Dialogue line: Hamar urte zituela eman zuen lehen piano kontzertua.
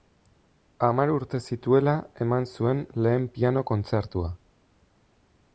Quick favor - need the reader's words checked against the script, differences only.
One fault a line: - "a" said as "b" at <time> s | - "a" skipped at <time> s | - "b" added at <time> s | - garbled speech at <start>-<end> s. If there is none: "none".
none